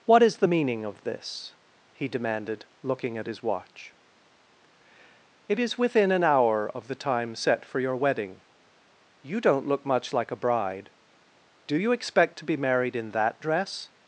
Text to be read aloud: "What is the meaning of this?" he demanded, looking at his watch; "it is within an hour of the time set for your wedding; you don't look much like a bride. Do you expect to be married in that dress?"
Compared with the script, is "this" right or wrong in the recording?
right